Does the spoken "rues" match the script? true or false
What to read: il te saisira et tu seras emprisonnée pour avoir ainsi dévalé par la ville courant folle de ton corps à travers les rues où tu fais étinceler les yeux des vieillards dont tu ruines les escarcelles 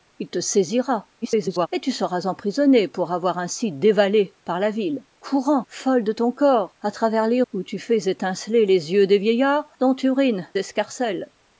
false